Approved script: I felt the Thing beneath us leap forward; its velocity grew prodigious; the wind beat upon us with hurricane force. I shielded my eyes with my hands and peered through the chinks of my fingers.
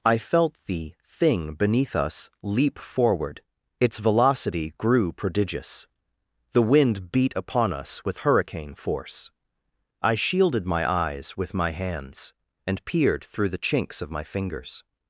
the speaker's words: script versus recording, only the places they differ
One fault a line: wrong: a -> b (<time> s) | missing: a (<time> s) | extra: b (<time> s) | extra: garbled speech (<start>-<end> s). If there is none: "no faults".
no faults